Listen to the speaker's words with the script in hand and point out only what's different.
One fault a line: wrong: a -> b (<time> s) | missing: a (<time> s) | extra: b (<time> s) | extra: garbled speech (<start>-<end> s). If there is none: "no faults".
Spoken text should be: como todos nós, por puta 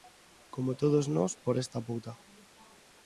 extra: esta (1.6 s)